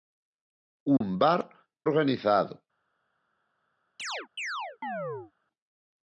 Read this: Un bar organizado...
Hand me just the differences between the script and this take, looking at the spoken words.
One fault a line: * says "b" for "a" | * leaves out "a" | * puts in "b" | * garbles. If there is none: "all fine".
all fine